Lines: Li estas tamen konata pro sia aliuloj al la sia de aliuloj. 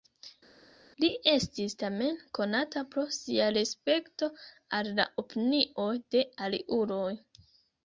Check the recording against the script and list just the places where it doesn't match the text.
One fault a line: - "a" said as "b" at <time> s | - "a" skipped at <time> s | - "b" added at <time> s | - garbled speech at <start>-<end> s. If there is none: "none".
- "estas" said as "estis" at 1.3 s
- "aliuloj" said as "respekto" at 3.6 s
- "sia" said as "opinioj" at 5.2 s